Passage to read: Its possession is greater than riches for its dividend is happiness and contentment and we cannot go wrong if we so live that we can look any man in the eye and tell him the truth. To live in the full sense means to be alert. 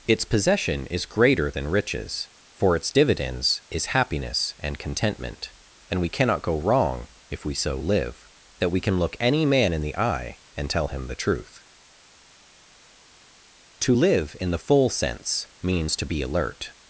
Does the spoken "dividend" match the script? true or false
false